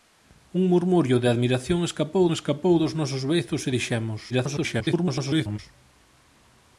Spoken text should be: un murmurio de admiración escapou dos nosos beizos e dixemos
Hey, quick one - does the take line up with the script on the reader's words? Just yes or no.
no